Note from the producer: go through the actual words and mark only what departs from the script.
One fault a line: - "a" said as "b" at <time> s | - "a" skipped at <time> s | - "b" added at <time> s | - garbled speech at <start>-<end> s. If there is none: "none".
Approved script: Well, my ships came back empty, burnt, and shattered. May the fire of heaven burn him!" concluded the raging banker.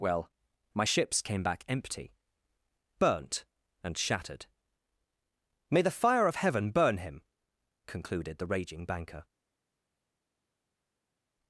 none